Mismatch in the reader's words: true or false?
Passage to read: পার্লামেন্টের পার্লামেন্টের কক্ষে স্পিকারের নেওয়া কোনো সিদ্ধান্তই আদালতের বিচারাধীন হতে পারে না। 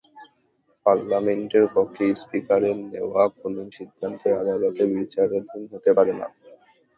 true